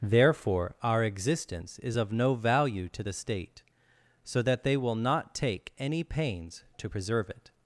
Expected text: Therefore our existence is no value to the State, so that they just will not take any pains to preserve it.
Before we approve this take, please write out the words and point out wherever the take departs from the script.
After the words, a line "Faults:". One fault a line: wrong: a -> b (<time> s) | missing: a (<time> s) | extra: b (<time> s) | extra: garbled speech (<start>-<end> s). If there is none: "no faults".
Therefore our existence is of no value to the State, so that they will not take any pains to preserve it.
Faults:
extra: of (2.0 s)
missing: just (4.8 s)